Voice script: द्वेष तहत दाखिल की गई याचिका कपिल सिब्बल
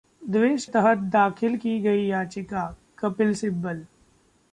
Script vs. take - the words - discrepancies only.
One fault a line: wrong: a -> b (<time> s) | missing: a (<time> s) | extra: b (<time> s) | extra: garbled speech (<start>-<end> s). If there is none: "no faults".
no faults